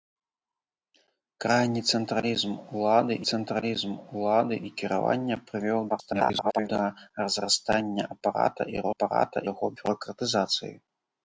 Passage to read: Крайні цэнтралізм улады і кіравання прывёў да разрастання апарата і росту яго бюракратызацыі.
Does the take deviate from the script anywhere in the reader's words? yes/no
yes